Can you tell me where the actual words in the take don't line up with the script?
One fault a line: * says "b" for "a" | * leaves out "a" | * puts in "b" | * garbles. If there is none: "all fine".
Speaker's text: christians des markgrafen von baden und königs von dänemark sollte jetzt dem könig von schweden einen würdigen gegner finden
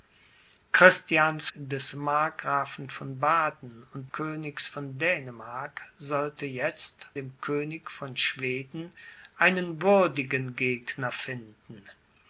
all fine